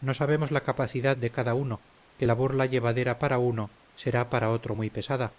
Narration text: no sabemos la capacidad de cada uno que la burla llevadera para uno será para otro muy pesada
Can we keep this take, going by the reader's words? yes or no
yes